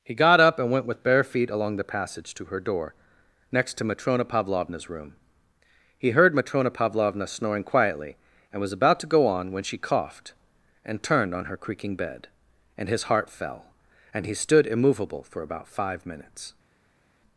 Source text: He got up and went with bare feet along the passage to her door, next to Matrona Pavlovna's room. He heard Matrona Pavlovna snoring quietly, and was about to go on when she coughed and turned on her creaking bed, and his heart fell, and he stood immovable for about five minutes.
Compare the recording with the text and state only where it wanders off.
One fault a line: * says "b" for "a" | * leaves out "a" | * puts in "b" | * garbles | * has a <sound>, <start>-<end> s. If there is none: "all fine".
all fine